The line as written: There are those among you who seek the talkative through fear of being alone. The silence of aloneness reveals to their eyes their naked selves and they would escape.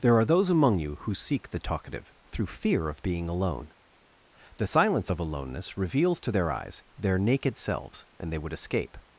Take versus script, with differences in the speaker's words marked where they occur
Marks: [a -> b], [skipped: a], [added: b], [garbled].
There are those among you who seek the talkative through fear of being alone. The silence of aloneness reveals to their eyes their naked selves and they would escape.